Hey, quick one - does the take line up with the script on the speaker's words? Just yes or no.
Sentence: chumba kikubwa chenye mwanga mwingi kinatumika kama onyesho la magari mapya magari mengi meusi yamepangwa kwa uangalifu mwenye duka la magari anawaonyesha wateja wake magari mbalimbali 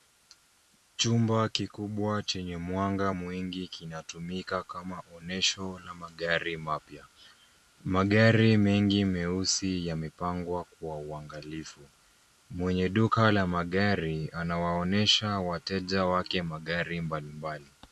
yes